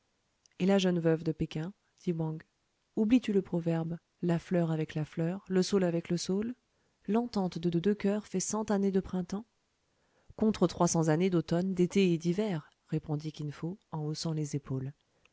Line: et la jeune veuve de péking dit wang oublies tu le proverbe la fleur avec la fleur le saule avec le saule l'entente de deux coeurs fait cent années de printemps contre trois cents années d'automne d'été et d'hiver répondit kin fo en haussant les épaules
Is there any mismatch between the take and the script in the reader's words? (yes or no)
yes